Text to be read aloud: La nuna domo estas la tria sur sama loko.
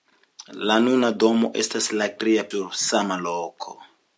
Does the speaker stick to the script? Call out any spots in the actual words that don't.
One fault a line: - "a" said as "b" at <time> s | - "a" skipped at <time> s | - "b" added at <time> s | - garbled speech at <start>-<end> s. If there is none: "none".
none